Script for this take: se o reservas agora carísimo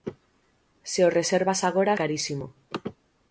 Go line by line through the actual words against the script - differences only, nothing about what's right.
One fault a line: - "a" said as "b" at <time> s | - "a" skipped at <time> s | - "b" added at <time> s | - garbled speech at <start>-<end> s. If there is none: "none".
none